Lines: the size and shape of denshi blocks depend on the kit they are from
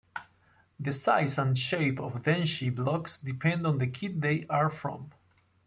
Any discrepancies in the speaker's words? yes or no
no